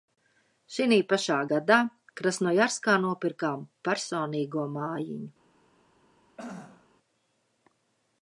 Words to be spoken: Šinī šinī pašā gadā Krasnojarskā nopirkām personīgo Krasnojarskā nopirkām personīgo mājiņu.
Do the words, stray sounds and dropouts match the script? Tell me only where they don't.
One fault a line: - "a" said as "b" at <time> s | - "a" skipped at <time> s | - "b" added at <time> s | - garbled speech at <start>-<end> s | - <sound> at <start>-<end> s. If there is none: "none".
- "šinī" skipped at 1.0 s
- "Krasnojarskā nopirkām personīgo" skipped at 4.6 s
- throat clearing at 6.4-6.9 s